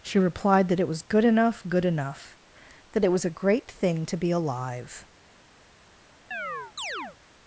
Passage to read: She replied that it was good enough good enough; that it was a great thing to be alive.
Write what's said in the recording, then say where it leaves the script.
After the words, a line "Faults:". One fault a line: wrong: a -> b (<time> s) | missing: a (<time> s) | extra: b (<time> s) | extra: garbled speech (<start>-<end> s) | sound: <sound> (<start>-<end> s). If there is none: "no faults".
She replied that it was good enough good enough; that it was a great thing to be alive.
Faults:
sound: chirp (6.3-7.2 s)